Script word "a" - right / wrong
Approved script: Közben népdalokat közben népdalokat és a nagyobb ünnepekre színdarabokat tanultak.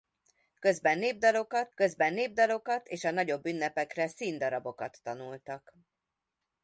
right